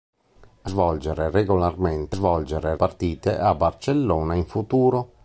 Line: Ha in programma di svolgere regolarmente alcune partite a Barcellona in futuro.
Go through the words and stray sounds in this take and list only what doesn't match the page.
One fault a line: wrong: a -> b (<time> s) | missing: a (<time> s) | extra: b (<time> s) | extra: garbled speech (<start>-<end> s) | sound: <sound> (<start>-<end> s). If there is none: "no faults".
missing: in programma di (0.7 s)
wrong: alcune -> svolgere (2.1 s)